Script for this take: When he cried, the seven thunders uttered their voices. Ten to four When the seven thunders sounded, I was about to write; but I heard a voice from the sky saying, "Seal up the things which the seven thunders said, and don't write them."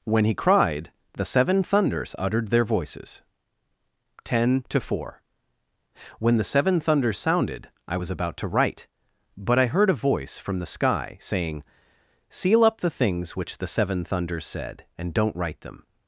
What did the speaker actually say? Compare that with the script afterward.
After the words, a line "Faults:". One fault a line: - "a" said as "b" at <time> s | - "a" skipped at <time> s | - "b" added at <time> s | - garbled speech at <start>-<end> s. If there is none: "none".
When he cried, the seven thunders uttered their voices. Ten to four When the seven thunders sounded, I was about to write; but I heard a voice from the sky saying, "Seal up the things which the seven thunders said, and don't write them."
Faults:
none